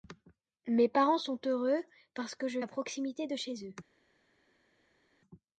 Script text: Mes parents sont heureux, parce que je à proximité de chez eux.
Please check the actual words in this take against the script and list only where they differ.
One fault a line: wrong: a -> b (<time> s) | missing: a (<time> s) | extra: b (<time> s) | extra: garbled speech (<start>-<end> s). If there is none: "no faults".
no faults